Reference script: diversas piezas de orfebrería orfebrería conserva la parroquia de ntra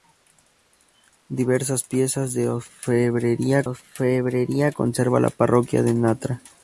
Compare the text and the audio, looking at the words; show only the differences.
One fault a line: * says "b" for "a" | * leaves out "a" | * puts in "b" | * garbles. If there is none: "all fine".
all fine